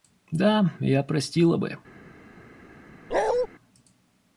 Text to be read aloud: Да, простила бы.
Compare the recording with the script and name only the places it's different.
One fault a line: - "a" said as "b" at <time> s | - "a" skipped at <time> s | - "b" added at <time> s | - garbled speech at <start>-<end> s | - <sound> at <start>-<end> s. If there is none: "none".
- "я" added at 0.8 s
- bark at 3.1-3.5 s